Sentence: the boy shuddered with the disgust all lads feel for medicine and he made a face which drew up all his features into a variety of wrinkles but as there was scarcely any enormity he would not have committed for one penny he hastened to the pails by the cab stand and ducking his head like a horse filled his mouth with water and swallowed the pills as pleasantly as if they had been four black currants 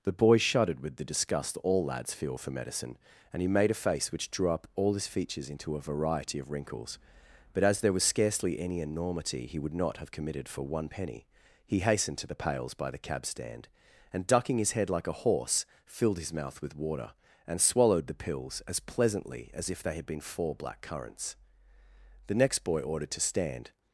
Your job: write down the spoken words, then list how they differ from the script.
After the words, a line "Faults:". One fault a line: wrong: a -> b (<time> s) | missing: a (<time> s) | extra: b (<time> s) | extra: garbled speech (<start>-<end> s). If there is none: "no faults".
the boy shuddered with the disgust all lads feel for medicine and he made a face which drew up all his features into a variety of wrinkles but as there was scarcely any enormity he would not have committed for one penny he hastened to the pails by the cab stand and ducking his head like a horse filled his mouth with water and swallowed the pills as pleasantly as if they had been four black currants the next boy ordered to stand
Faults:
extra: the next boy ordered to stand (22.3 s)